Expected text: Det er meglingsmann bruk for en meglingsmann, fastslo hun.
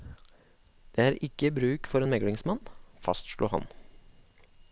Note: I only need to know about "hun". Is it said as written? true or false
false